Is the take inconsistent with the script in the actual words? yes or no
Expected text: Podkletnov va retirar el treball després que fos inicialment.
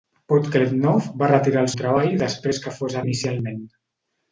no